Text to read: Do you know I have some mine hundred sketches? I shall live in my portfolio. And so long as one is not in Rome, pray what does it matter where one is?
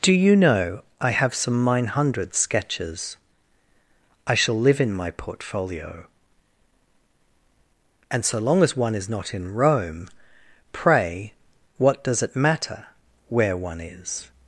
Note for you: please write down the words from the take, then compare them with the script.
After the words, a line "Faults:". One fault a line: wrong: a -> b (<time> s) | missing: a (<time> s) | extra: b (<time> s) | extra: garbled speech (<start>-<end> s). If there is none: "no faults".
Do you know I have some mine hundred sketches? I shall live in my portfolio. And so long as one is not in Rome, pray what does it matter where one is?
Faults:
no faults